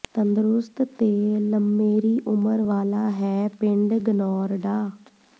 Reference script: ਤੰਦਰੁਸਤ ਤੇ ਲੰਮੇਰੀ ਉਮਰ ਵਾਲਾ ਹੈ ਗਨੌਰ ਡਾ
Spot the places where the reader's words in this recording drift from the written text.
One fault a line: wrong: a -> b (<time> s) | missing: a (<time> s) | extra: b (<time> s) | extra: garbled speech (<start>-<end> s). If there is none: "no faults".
extra: ਪਿੰਡ (3.6 s)